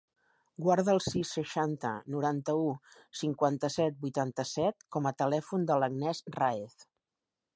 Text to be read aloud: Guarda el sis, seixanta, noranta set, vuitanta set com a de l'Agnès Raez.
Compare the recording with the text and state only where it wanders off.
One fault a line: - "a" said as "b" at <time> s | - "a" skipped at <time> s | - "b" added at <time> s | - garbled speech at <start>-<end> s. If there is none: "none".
- "u cinquanta" added at 2.6 s
- "telèfon" added at 5.2 s